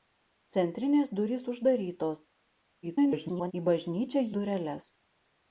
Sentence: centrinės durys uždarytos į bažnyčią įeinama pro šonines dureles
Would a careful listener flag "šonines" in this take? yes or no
yes